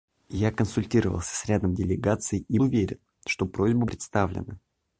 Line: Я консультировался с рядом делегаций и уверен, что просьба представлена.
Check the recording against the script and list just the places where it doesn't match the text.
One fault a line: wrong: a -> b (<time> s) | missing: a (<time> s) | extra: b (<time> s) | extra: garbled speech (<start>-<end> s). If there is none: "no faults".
no faults